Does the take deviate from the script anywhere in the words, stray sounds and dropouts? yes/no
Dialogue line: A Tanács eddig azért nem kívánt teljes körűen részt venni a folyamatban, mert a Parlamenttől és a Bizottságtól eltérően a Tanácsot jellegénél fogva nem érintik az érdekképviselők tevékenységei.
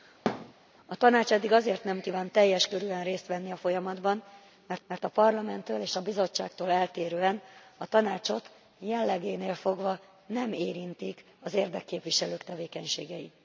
yes